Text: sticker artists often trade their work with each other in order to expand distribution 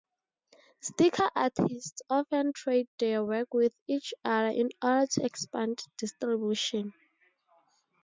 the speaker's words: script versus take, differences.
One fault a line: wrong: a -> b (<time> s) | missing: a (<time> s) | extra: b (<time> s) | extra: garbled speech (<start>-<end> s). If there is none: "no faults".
no faults